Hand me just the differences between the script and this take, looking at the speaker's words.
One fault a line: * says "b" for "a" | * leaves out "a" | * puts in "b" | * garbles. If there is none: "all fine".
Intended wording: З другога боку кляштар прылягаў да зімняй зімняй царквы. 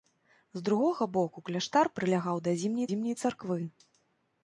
all fine